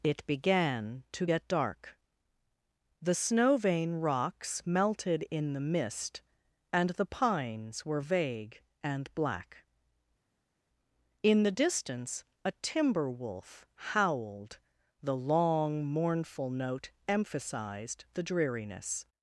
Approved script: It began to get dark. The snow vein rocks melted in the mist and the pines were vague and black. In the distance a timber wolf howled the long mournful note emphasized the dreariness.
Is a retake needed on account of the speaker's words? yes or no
no